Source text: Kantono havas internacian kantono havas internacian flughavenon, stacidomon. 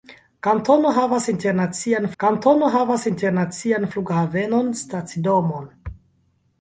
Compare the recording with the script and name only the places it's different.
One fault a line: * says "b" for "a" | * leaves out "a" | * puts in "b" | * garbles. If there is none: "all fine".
all fine